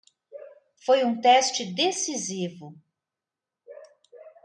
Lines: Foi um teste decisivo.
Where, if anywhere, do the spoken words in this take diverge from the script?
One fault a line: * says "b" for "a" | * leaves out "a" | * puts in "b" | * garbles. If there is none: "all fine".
all fine